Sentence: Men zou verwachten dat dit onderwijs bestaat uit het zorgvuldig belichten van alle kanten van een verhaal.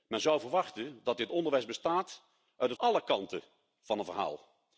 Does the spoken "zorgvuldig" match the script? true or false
false